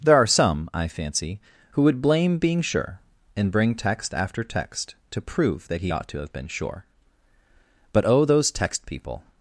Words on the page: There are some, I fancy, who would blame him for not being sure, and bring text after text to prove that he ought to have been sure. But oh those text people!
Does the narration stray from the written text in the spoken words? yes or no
yes